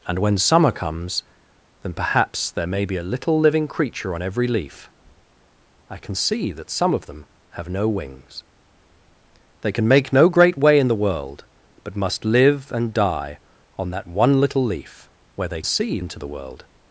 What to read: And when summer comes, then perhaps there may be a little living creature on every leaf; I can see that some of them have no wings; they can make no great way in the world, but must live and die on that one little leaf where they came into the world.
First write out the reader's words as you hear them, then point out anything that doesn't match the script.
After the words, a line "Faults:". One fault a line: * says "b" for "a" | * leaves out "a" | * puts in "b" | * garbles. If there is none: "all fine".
And when summer comes, then perhaps there may be a little living creature on every leaf; I can see that some of them have no wings; they can make no great way in the world, but must live and die on that one little leaf where they see into the world.
Faults:
* says "see" for "came"